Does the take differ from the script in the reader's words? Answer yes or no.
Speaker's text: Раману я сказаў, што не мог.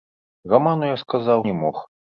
yes